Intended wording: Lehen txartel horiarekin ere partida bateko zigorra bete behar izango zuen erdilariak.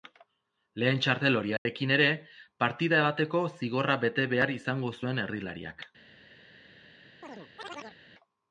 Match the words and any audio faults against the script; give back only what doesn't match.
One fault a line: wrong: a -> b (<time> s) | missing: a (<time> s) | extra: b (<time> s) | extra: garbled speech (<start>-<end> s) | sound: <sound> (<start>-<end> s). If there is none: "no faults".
sound: dropout (1.6-1.7 s)
sound: chirp (7.2-8.0 s)